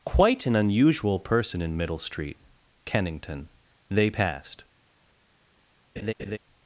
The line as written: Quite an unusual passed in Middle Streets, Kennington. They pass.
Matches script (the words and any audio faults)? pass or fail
fail